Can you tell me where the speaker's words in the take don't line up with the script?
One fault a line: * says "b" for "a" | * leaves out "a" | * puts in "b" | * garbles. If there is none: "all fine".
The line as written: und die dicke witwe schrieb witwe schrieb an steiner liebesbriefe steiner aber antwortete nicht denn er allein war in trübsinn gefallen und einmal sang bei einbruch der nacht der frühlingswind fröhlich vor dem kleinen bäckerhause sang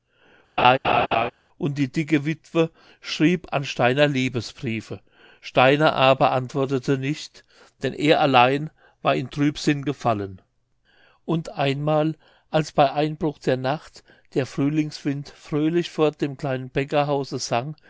* leaves out "witwe schrieb"
* says "als" for "sang"